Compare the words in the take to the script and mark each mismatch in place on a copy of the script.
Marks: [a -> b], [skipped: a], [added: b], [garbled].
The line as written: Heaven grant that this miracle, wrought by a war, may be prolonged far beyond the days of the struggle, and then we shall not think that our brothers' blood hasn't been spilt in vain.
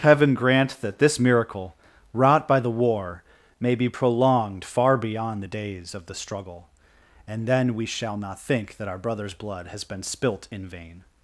Heaven grant that this miracle, wrought by [a -> the] war, may be prolonged far beyond the days of the struggle, and then we shall not think that our brothers' blood [hasn't -> has] been spilt in vain.